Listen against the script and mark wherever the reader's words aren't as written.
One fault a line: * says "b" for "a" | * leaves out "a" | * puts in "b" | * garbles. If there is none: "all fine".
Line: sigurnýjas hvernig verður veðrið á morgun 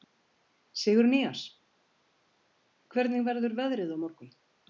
all fine